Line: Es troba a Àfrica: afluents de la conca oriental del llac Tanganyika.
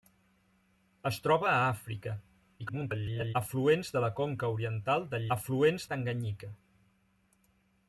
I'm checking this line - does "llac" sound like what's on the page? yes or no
no